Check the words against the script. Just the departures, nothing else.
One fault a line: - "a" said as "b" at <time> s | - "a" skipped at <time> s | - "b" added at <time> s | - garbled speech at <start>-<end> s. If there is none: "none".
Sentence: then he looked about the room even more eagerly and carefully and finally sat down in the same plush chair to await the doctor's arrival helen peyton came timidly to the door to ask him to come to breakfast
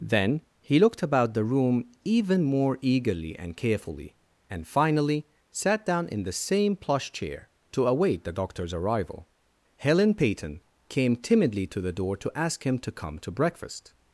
none